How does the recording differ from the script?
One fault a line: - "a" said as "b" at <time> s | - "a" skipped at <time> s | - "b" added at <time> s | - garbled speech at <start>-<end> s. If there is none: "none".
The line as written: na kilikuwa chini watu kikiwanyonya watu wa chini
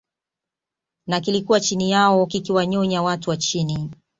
- "watu" said as "yao" at 1.9 s